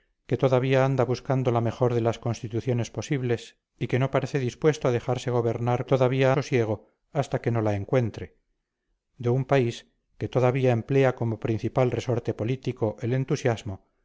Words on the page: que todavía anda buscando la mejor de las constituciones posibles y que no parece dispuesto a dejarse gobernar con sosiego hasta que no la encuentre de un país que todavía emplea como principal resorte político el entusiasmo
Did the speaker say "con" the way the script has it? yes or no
no